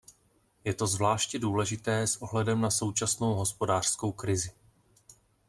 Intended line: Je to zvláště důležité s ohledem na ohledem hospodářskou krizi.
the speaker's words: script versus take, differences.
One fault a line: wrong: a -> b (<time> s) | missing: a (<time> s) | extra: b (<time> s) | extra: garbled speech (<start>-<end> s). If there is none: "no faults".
wrong: ohledem -> současnou (2.7 s)